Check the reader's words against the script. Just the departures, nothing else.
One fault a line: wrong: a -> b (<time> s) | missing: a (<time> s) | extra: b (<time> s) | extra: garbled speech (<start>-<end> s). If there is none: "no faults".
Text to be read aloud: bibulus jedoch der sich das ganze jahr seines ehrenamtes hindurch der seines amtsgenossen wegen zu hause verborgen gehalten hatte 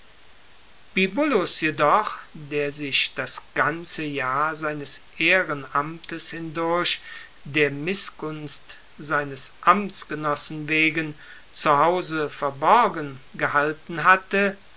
extra: mißgunst (7.7 s)